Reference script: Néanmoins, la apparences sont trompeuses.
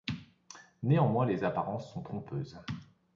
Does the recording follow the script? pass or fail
fail